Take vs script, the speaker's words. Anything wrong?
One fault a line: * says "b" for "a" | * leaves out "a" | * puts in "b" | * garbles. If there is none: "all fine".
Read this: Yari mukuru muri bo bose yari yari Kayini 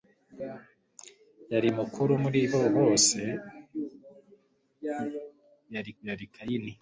all fine